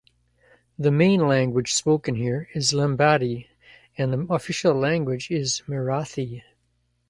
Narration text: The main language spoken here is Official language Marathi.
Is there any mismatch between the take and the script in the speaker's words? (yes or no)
yes